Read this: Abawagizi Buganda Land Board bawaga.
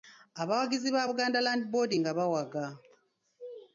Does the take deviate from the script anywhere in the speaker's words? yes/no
yes